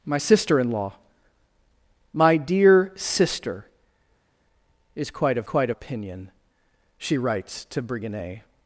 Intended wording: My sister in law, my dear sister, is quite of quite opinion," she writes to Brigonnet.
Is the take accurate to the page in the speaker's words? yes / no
yes